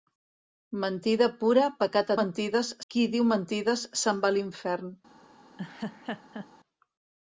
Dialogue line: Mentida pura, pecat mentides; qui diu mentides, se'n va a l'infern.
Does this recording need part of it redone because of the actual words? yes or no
no